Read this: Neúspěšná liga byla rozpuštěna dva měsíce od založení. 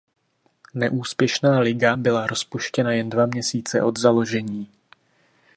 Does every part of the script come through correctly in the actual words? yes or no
no